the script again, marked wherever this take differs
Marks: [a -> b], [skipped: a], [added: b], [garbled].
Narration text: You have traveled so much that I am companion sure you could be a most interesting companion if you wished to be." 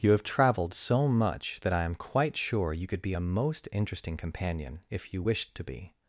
You have traveled so much that I am [companion -> quite] sure you could be a most interesting companion if you wished to be."